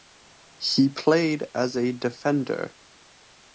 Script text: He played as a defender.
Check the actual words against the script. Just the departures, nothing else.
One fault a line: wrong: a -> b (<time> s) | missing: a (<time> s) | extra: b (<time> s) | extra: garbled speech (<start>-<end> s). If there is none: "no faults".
no faults